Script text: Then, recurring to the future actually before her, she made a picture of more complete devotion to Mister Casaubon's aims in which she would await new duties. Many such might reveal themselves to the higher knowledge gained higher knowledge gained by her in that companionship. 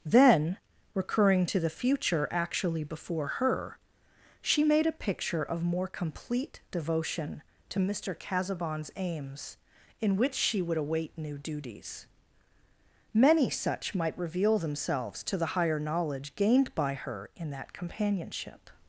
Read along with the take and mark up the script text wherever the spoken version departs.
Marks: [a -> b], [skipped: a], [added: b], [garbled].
Then, recurring to the future actually before her, she made a picture of more complete devotion to Mister Casaubon's aims in which she would await new duties. Many such might reveal themselves to the higher knowledge gained [skipped: higher knowledge gained] by her in that companionship.